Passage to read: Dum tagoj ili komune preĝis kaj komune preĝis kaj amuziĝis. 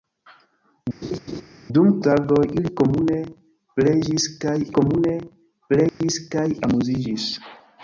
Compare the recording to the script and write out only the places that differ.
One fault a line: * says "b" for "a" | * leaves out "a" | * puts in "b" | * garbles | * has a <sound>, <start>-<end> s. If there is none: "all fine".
* has a laugh, 1.0-1.4 s
* has a dropout, 5.9-6.0 s